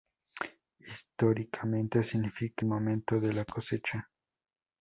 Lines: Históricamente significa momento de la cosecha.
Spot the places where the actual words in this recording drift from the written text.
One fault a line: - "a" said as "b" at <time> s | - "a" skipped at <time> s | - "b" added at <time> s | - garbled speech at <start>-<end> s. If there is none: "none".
none